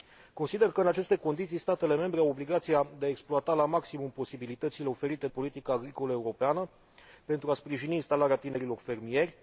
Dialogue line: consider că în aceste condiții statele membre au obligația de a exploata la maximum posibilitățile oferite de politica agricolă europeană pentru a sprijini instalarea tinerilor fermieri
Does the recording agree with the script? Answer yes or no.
no